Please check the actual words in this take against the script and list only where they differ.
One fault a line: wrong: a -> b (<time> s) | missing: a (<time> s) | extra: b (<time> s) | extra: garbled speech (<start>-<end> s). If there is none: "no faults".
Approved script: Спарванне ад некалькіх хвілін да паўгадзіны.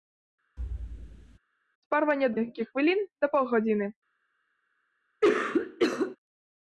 no faults